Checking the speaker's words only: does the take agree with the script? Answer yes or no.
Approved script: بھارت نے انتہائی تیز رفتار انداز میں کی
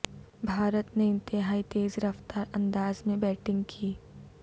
no